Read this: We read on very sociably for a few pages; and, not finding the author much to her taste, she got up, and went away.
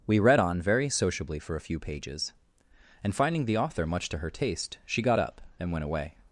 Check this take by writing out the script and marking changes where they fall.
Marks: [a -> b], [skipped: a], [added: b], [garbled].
We read on very sociably for a few pages; and, [skipped: not] finding the author much to her taste, she got up, and went away.